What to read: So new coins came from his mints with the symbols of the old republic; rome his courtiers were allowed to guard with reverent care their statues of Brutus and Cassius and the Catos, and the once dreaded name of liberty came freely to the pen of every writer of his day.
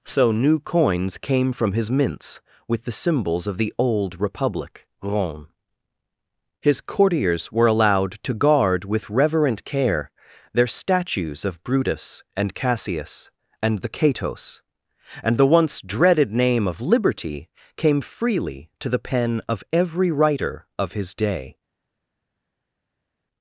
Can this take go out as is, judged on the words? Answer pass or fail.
pass